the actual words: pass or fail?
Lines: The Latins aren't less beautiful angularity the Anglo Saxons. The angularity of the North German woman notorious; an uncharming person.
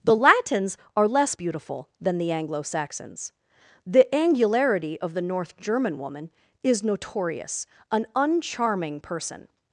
fail